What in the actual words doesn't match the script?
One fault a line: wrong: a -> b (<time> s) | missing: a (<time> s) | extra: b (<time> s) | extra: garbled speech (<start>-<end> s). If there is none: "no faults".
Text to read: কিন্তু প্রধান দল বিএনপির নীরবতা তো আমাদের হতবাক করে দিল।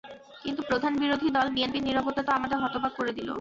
extra: বিরোধী (1.0 s)